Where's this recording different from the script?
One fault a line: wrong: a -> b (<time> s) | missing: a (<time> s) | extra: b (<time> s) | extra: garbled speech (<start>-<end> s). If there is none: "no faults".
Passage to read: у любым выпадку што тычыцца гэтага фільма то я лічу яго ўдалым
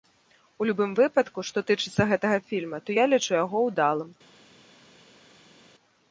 no faults